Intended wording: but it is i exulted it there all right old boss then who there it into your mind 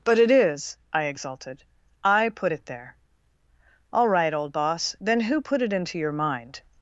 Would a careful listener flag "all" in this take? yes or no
no